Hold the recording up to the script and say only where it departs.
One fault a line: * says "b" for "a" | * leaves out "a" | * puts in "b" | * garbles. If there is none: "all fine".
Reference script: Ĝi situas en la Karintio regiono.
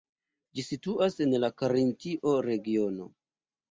all fine